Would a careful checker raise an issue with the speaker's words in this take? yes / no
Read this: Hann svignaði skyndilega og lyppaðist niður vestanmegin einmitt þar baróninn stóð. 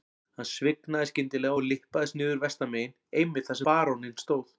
no